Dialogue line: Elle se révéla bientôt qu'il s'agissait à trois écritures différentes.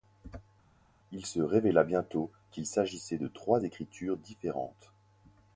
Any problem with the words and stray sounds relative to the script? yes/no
yes